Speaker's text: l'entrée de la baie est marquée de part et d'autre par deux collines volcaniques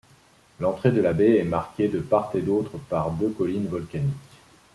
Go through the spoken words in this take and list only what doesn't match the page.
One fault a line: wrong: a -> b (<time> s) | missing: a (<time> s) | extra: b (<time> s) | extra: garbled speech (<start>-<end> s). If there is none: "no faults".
no faults